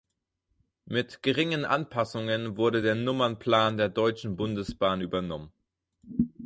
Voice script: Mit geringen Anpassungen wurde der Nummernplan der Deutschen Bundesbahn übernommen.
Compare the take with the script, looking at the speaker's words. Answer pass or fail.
pass